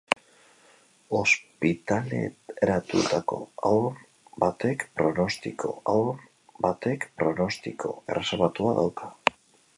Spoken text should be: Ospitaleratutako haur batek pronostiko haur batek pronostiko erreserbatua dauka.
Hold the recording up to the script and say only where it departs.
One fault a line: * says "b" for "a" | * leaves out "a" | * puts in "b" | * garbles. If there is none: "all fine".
all fine